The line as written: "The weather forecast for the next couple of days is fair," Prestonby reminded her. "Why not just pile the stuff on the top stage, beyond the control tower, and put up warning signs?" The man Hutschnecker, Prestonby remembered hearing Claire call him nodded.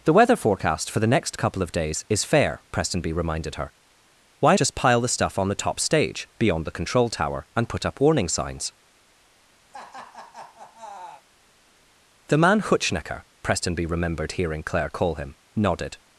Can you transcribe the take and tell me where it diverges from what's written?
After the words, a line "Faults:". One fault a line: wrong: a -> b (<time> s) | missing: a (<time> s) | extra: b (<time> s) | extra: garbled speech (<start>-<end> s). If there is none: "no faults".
"The weather forecast for the next couple of days is fair," Prestonby reminded her. "Why just pile the stuff on the top stage, beyond the control tower, and put up warning signs?" The man Hutschnecker, Prestonby remembered hearing Claire call him nodded.
Faults:
missing: not (4.6 s)